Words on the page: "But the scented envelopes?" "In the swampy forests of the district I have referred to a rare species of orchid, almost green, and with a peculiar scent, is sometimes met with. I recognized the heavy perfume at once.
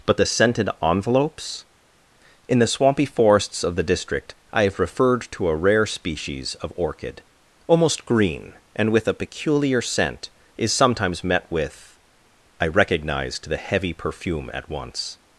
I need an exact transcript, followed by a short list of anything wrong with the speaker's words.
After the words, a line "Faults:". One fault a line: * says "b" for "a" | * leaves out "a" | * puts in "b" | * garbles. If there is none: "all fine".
"But the scented envelopes?" "In the swampy forests of the district I have referred to a rare species of orchid, almost green, and with a peculiar scent, is sometimes met with. I recognized the heavy perfume at once.
Faults:
all fine